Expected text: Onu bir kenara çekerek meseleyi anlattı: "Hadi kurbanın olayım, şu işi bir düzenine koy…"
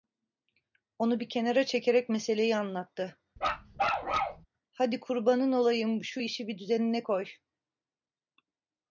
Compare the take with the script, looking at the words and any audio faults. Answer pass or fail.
fail